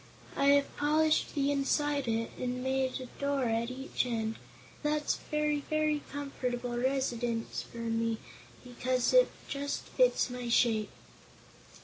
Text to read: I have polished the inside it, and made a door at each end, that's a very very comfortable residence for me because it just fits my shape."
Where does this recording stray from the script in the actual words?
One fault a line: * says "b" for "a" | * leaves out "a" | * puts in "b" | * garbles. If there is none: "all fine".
all fine